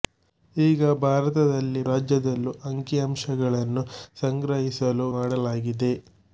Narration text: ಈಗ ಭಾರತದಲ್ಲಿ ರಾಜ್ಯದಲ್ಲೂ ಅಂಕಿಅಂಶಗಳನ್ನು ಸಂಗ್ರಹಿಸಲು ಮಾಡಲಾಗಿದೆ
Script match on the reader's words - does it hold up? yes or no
yes